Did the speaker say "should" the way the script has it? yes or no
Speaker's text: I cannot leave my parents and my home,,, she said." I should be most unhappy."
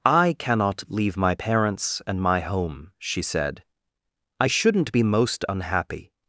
no